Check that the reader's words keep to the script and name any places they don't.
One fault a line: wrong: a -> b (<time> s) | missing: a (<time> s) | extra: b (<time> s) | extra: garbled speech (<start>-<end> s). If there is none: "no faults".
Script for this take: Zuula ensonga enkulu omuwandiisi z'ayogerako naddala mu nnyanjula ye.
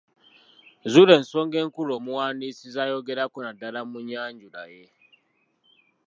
no faults